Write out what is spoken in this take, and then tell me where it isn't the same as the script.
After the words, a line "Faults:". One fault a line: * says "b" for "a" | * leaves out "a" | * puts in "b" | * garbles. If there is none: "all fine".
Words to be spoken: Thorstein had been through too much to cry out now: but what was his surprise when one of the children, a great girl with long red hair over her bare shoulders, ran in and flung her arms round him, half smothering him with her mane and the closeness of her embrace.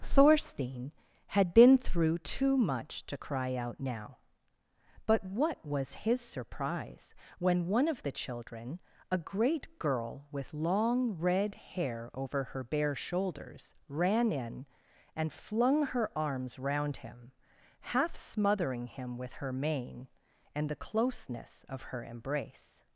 Thorstein had been through too much to cry out now: but what was his surprise when one of the children, a great girl with long red hair over her bare shoulders, ran in and flung her arms round him, half smothering him with her mane and the closeness of her embrace.
Faults:
all fine